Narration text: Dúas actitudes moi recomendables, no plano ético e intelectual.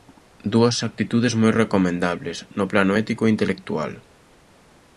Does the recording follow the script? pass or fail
pass